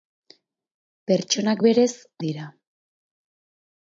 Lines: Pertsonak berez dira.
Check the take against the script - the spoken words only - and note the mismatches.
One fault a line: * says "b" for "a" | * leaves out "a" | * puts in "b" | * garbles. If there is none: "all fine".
all fine